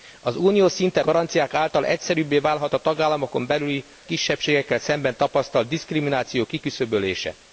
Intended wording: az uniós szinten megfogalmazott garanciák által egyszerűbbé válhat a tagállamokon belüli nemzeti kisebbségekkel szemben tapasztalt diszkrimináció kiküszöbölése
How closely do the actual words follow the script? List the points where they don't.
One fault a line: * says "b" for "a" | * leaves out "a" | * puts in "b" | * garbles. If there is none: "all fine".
* leaves out "megfogalmazott"
* leaves out "nemzeti"